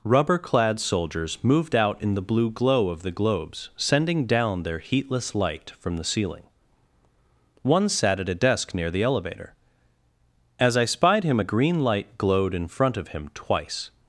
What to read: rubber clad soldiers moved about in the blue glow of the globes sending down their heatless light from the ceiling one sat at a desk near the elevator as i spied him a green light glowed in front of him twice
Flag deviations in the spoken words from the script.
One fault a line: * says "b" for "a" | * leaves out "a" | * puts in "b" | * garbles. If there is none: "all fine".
* says "out" for "about"